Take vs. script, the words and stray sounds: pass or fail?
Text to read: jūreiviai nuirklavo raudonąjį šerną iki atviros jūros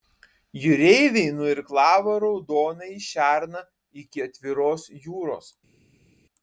pass